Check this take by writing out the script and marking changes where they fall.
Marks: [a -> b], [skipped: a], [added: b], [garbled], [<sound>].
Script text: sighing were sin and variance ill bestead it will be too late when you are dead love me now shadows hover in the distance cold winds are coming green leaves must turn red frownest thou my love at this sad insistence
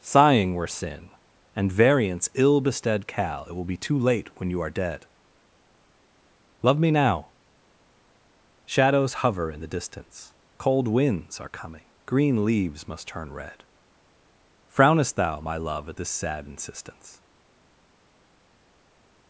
sighing were sin and variance ill bestead [added: cal] it will be too late when you are dead love me now shadows hover in the distance cold winds are coming green leaves must turn red frownest thou my love at this sad insistence